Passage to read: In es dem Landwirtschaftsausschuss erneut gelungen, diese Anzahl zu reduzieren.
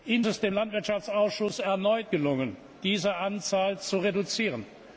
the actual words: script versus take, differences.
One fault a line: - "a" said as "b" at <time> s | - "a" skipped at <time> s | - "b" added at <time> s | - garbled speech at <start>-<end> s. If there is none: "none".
none